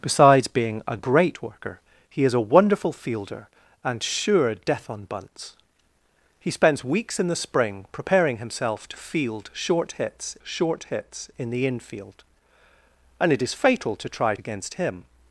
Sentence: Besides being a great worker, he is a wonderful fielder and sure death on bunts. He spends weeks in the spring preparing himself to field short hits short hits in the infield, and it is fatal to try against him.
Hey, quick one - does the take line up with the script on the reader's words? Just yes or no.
yes